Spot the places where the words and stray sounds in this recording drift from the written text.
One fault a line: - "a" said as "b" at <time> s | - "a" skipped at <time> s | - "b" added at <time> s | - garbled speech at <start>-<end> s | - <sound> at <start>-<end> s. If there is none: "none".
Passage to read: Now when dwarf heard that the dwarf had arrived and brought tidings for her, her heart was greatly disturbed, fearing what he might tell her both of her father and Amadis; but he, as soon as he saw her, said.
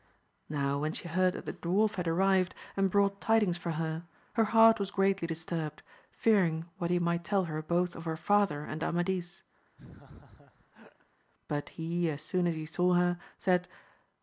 - "dwarf" said as "she" at 0.9 s
- laugh at 9.8-11.1 s